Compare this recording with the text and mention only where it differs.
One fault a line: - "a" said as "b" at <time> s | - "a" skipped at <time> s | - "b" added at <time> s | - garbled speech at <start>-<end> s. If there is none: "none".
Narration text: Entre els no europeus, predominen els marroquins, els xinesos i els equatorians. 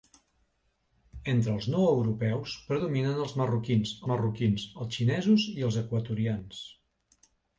- "marroquins" added at 4.1 s